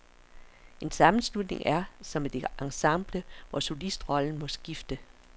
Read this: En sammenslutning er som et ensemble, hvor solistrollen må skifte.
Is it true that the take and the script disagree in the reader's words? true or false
false